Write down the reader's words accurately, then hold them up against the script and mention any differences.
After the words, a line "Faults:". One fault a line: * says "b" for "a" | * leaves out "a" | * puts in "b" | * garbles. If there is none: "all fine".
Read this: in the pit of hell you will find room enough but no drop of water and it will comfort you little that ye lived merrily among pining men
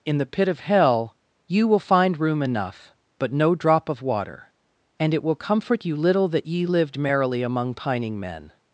in the pit of hell you will find room enough but no drop of water and it will comfort you little that ye lived merrily among pining men
Faults:
all fine